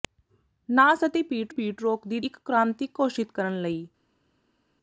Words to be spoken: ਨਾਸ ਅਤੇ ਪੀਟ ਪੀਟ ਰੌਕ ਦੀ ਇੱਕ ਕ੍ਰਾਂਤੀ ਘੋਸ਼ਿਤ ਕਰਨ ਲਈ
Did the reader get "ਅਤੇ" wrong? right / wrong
right